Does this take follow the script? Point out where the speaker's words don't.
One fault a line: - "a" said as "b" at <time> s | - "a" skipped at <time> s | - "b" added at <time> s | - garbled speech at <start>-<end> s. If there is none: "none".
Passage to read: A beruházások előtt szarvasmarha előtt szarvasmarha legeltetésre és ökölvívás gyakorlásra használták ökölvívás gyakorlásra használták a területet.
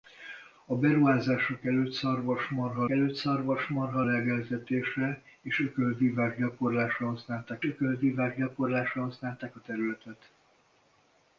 none